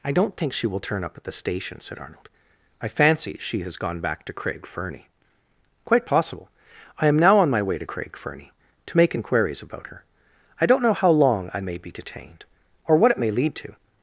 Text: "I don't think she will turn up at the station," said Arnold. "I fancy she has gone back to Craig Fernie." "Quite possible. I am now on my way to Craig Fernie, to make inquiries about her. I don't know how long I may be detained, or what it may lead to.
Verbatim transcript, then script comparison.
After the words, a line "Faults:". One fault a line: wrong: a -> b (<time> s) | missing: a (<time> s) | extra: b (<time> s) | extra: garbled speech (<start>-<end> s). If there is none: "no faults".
"I don't think she will turn up at the station," said Arnold. "I fancy she has gone back to Craig Fernie." "Quite possible. I am now on my way to Craig Fernie, to make inquiries about her. I don't know how long I may be detained, or what it may lead to.
Faults:
no faults